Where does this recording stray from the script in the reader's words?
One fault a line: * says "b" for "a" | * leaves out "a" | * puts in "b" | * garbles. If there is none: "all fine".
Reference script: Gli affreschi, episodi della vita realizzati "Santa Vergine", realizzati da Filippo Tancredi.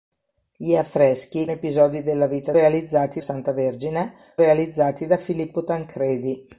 all fine